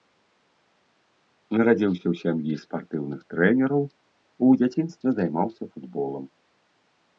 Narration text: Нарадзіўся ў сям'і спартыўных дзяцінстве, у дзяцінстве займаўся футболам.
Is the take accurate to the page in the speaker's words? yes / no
no